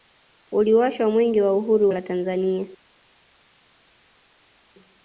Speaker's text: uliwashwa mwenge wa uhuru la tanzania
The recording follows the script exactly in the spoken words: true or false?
true